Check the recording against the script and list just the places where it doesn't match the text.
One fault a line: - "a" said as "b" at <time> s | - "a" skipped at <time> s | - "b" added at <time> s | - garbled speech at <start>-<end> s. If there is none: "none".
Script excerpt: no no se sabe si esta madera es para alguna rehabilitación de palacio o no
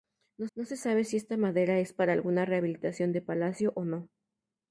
none